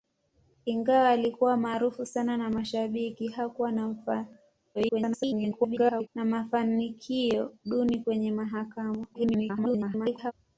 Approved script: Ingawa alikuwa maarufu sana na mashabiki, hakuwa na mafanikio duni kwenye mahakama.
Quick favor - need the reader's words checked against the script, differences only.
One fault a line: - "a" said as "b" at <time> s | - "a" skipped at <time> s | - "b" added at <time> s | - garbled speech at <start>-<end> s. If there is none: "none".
- garbled speech at 4.7-6.1 s
- garbled speech at 9.1-10.3 s